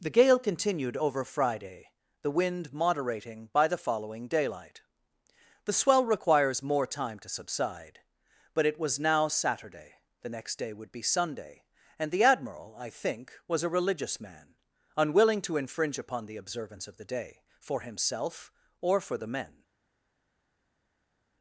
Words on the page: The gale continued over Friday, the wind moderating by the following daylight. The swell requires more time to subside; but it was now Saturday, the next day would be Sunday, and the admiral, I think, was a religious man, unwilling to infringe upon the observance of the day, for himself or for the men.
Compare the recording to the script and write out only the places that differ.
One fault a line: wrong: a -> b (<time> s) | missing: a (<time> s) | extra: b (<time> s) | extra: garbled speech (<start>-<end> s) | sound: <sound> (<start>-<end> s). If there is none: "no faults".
no faults